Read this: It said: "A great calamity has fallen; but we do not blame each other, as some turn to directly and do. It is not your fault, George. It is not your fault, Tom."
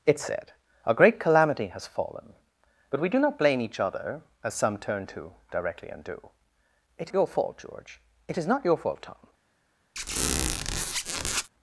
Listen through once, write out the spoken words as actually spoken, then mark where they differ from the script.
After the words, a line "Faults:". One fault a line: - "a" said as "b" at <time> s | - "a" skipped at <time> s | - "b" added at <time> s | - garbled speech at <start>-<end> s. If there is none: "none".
It said: "A great calamity has fallen; but we do not blame each other, as some turn to directly and do. It your fault, George. It is not your fault, Tom."
Faults:
- "is not" skipped at 7.1 s